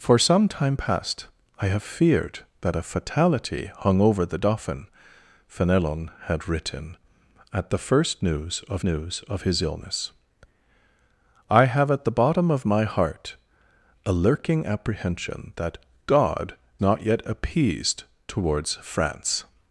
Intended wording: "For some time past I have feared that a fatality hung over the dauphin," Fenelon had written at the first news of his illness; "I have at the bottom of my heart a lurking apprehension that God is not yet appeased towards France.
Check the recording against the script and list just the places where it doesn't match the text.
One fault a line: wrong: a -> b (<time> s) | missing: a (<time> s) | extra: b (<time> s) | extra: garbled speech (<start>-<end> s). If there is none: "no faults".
extra: news of (8.8 s)
missing: is (16.6 s)